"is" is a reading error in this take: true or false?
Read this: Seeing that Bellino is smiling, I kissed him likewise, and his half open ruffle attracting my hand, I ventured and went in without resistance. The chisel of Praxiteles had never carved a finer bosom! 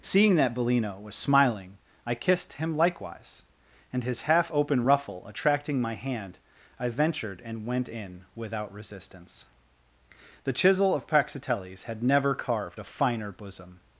true